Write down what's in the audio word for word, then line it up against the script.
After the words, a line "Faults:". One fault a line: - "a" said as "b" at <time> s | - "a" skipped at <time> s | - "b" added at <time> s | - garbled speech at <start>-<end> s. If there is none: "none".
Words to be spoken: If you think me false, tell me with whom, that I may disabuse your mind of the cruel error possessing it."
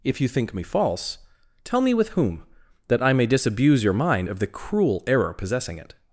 If you think me false, tell me with whom, that I may disabuse your mind of the cruel error possessing it."
Faults:
none